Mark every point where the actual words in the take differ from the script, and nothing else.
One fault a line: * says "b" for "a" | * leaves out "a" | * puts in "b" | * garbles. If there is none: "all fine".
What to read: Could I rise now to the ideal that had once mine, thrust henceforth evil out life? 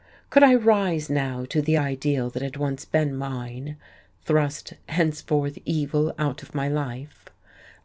* puts in "been"
* puts in "of my"